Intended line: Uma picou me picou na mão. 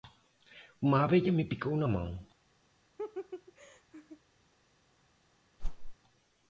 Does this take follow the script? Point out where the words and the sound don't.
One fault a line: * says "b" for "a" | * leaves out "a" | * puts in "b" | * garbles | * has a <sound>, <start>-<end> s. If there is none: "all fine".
* says "abelha" for "picou"
* has a laugh, 3.0-4.2 s
* has a whoosh, 5.6-6.0 s